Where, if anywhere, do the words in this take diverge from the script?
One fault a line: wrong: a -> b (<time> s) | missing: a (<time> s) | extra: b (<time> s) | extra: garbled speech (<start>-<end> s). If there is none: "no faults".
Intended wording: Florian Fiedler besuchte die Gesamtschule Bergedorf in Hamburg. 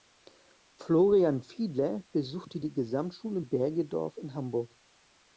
no faults